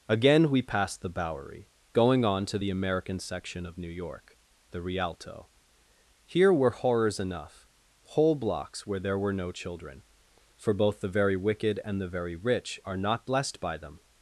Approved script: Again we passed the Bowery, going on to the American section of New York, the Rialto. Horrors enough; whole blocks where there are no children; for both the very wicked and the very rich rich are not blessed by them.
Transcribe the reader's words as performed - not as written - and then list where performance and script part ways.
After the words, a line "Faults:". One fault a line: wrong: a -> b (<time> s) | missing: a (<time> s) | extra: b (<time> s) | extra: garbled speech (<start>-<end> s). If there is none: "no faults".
Again we passed the Bowery, going on to the American section of New York, the Rialto. Here were horrors enough; whole blocks where there were no children; for both the very wicked and the very rich are not blessed by them.
Faults:
extra: Here were (6.3 s)
wrong: are -> were (9.2 s)
missing: rich (12.8 s)